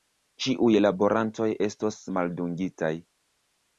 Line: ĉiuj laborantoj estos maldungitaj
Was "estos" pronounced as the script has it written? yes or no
yes